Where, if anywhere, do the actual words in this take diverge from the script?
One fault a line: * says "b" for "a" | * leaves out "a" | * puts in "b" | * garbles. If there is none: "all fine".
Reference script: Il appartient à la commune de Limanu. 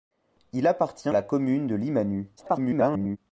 * leaves out "à"
* garbles